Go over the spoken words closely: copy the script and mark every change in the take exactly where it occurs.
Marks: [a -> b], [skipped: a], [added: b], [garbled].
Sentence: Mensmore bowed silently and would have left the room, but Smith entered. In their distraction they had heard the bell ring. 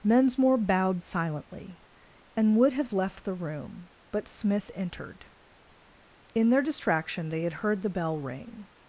Mensmore bowed silently and would have left the room, but Smith entered. In their distraction they had heard the bell ring.